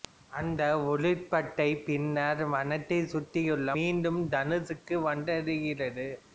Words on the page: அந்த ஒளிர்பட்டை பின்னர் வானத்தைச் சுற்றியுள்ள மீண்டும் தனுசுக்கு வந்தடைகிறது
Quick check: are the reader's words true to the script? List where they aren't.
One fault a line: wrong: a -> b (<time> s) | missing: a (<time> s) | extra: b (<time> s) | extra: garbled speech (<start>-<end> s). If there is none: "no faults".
no faults